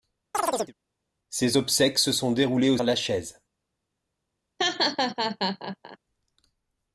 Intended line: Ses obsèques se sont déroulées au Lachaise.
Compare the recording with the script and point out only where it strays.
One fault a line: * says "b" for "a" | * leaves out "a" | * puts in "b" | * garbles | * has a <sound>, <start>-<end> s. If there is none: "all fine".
* has a chirp, 0.3-0.7 s
* has a laugh, 4.6-6.0 s